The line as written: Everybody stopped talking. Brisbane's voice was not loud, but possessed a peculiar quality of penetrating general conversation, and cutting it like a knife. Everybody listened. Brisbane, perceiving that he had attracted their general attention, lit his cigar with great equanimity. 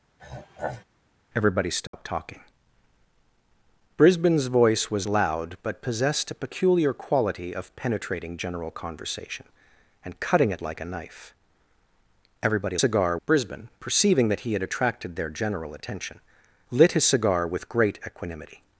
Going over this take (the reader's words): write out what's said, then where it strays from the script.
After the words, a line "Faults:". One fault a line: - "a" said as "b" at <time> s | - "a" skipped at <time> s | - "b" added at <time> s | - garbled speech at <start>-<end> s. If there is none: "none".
Everybody stopped talking. Brisbane's voice was loud, but possessed a peculiar quality of penetrating general conversation, and cutting it like a knife. Everybody cigar. Brisbane, perceiving that he had attracted their general attention, lit his cigar with great equanimity.
Faults:
- "not" skipped at 5.1 s
- "listened" said as "cigar" at 12.8 s